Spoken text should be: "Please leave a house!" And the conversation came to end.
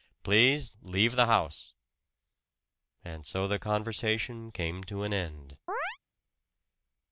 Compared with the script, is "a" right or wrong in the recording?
wrong